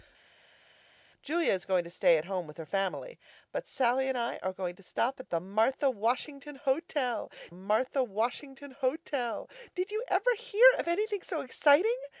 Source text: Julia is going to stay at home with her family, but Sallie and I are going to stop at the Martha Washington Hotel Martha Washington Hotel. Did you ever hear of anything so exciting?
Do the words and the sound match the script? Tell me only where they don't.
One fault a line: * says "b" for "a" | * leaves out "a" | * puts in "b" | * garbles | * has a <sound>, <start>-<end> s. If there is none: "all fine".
all fine